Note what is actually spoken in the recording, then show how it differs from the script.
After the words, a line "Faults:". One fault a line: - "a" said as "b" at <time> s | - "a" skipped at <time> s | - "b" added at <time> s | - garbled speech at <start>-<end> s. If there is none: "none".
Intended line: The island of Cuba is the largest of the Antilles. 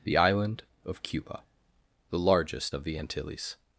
The island of Cuba the largest of the Antilles.
Faults:
- "is" skipped at 1.4 s